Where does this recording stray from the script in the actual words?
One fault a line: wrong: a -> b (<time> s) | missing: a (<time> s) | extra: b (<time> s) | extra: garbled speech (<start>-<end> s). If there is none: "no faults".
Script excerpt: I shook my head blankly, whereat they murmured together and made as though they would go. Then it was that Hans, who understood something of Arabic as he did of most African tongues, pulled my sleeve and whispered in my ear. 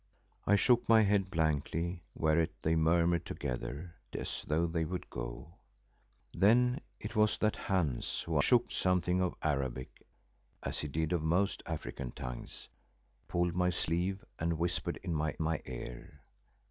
missing: and made (4.0 s)
wrong: understood -> shook (8.4 s)
extra: my (15.4 s)